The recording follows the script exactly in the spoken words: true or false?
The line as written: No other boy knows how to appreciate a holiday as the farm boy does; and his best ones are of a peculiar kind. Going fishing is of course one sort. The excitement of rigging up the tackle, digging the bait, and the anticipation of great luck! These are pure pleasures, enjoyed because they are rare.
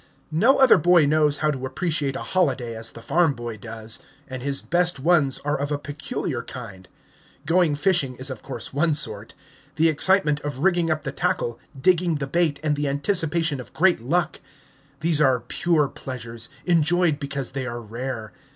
true